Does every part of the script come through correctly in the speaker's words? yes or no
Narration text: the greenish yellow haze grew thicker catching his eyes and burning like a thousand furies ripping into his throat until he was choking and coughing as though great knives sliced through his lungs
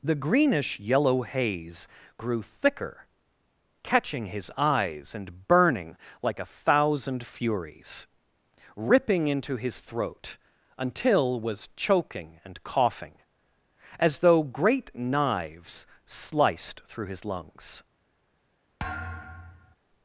no